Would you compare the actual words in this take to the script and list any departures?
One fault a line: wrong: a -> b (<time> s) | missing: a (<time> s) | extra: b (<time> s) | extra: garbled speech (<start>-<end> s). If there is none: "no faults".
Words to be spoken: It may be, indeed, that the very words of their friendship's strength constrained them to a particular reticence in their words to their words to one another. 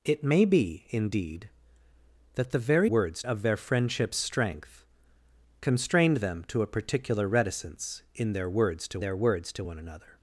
no faults